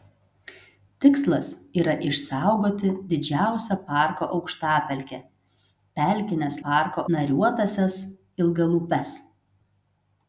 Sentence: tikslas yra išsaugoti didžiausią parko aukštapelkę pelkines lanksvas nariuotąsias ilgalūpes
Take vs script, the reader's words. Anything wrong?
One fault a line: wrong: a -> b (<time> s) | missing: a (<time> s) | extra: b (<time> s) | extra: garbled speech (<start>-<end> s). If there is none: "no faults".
wrong: lanksvas -> parko (6.7 s)